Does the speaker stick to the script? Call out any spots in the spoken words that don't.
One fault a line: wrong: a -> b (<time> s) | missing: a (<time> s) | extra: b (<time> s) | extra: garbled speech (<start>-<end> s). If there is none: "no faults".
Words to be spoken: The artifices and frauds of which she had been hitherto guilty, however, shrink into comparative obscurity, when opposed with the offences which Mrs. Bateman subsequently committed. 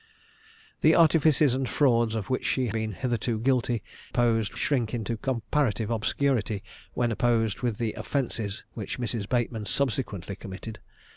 missing: had (2.7 s)
wrong: however -> opposed (4.1 s)